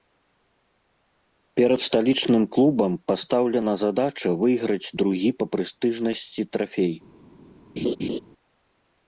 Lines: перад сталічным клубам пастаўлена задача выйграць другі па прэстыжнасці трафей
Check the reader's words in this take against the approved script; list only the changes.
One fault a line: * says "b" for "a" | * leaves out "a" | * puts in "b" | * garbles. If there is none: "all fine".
all fine